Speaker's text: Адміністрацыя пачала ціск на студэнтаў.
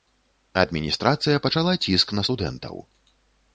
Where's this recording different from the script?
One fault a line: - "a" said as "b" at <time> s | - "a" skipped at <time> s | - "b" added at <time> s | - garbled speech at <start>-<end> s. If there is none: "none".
none